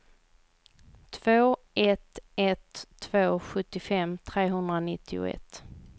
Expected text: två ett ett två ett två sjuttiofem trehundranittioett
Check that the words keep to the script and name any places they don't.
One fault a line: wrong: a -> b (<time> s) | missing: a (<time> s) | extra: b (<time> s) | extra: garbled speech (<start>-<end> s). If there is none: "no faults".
missing: ett två (3.4 s)